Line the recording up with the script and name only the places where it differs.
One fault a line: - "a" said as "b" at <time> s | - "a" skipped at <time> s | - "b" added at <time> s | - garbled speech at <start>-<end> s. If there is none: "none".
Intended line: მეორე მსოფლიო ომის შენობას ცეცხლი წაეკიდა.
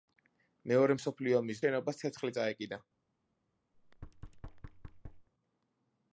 none